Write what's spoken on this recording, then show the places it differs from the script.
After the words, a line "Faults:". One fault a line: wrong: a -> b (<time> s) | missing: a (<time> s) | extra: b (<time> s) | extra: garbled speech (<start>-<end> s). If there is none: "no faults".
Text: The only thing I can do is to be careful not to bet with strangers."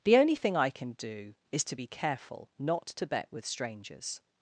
The only thing I can do is to be careful not to bet with strangers."
Faults:
no faults